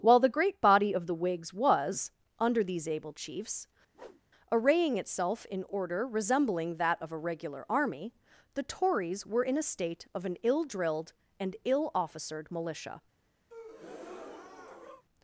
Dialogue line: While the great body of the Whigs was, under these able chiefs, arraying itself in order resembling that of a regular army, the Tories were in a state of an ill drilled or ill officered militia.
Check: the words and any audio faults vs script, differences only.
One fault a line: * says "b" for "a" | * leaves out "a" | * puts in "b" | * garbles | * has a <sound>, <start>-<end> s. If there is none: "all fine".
* has a whoosh, 3.9-4.2 s
* says "and" for "or"
* has a breath, 13.5-15.0 s